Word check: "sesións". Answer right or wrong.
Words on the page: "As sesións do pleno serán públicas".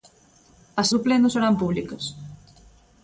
wrong